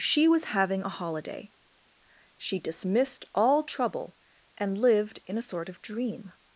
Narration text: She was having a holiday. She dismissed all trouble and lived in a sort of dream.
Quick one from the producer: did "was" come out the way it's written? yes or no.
yes